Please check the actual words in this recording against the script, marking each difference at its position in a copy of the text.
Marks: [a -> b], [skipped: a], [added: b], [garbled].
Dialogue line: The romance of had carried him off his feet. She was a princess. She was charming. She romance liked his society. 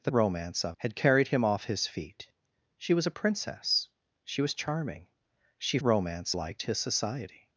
The romance of had carried him off his feet. She was a princess. She was charming. She romance liked his society.